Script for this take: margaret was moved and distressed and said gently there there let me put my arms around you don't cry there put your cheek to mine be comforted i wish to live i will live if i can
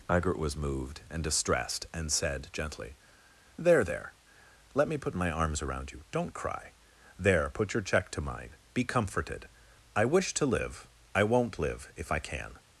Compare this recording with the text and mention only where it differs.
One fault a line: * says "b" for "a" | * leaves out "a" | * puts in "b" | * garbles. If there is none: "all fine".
* says "check" for "cheek"
* says "won't" for "will"